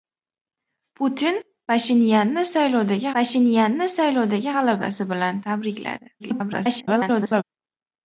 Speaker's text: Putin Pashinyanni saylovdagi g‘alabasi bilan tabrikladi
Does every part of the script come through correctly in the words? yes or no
no